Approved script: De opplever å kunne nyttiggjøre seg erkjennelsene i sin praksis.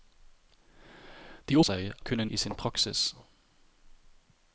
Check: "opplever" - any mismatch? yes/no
yes